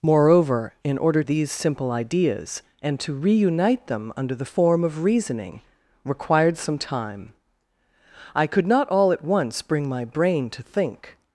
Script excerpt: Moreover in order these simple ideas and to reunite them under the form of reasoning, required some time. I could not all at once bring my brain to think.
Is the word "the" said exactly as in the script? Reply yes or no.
yes